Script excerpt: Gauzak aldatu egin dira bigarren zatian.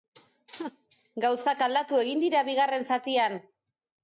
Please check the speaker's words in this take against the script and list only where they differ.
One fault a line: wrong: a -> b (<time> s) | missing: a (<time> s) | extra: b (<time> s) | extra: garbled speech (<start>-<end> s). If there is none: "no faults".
no faults